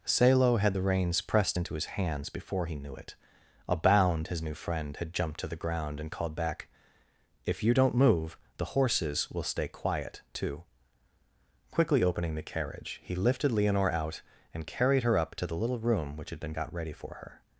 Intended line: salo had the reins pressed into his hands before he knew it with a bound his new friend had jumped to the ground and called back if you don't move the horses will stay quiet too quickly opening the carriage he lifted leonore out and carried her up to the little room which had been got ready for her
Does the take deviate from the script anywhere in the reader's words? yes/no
yes